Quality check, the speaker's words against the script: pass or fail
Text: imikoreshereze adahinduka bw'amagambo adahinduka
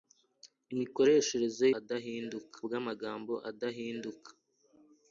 pass